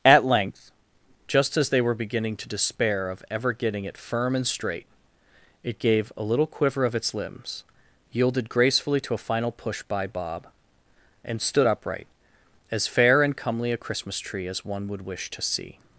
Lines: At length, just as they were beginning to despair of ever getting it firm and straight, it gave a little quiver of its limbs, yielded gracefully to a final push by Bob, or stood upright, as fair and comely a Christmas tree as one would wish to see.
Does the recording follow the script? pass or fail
fail